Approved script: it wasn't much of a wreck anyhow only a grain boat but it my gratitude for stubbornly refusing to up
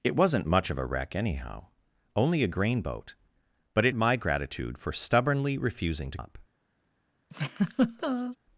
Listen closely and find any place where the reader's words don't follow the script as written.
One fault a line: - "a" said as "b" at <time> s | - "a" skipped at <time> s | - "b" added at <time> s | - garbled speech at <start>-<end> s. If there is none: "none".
none